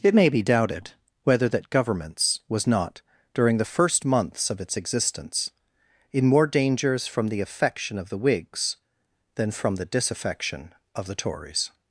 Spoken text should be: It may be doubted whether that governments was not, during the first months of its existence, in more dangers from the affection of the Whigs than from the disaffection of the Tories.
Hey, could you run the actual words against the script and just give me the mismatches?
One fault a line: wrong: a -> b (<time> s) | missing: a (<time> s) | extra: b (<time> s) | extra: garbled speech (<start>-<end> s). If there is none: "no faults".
no faults